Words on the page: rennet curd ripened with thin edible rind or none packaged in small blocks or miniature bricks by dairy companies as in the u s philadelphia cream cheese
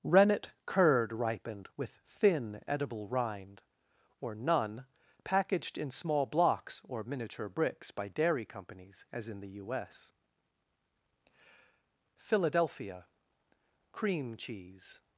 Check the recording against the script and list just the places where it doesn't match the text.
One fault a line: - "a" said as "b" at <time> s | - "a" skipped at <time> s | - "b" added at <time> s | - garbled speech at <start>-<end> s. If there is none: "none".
none